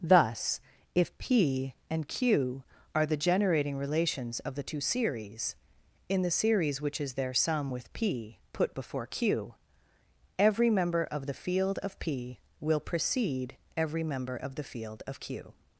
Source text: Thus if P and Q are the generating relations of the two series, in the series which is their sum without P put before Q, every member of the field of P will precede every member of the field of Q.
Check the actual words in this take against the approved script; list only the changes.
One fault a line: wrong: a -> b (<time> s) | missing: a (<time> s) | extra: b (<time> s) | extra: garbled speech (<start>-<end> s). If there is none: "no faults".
wrong: without -> with (7.7 s)